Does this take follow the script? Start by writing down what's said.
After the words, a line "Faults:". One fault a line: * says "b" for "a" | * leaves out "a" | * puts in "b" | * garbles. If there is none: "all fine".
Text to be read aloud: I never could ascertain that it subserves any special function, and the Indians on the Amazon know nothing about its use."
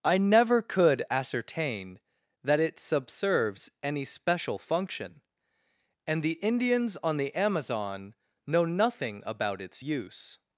I never could ascertain that it subserves any special function, and the Indians on the Amazon know nothing about its use."
Faults:
all fine